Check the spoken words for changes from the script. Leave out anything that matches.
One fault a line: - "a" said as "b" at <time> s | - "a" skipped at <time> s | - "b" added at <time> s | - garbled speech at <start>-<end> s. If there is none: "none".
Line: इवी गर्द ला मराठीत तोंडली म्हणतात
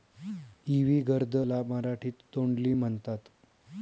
none